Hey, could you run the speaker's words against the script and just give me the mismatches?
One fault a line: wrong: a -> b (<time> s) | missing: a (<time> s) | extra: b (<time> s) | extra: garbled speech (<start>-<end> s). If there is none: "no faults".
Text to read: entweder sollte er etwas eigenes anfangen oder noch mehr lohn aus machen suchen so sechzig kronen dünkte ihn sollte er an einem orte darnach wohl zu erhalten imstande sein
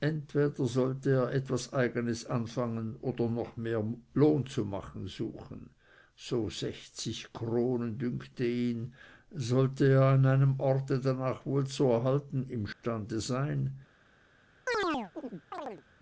wrong: aus -> zu (4.5 s)